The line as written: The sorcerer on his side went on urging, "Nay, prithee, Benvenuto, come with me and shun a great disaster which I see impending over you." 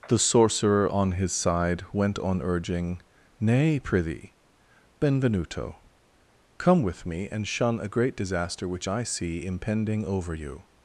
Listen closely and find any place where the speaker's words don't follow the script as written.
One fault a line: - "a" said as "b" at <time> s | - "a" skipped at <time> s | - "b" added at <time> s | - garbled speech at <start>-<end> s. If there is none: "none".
none